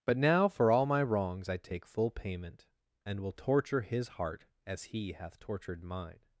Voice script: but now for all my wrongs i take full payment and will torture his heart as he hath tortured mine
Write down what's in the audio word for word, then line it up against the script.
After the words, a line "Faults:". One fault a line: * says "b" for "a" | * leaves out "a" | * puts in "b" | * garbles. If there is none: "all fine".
but now for all my wrongs i take full payment and will torture his heart as he hath tortured mine
Faults:
all fine